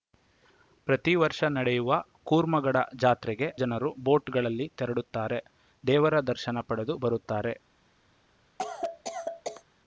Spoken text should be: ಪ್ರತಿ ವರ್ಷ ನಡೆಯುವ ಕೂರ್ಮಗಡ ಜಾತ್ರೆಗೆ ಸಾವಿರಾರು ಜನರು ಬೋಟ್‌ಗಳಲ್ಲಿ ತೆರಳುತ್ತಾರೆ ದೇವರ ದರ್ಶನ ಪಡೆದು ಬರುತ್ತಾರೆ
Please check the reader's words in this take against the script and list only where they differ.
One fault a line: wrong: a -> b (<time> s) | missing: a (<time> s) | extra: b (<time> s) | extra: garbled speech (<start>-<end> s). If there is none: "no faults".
missing: ಸಾವಿರಾರು (3.5 s)